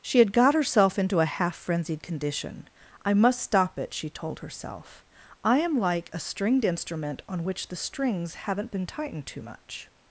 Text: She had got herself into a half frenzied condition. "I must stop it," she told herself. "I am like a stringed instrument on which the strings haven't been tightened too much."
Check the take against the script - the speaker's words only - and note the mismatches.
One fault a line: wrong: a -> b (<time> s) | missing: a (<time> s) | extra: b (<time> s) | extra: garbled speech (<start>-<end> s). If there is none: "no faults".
no faults